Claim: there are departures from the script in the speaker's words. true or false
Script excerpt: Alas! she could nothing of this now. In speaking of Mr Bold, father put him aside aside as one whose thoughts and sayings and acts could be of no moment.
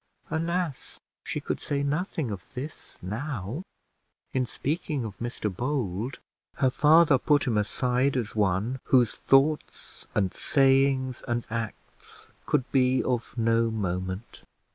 true